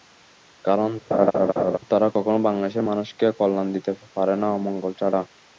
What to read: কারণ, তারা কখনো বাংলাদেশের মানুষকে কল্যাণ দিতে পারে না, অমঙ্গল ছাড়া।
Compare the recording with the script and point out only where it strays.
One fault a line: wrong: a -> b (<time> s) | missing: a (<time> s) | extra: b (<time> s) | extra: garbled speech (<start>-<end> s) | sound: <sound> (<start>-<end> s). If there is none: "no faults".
sound: laugh (1.1-1.8 s)